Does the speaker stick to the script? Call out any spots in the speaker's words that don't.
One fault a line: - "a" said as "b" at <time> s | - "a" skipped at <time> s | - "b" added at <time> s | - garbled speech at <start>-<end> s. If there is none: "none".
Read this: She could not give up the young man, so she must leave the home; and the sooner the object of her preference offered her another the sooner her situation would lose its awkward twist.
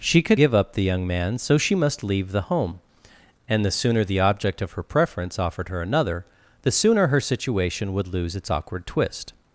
- "not" skipped at 0.4 s